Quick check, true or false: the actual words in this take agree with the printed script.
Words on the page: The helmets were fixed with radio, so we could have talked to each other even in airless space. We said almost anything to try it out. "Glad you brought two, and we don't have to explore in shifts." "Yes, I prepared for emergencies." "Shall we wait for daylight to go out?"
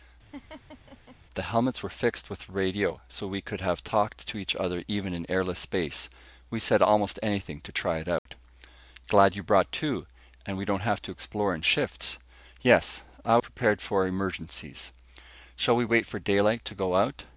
true